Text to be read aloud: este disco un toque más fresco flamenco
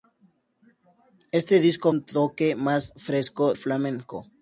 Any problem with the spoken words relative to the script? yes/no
no